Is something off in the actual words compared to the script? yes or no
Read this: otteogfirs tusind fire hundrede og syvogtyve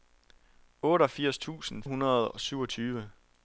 yes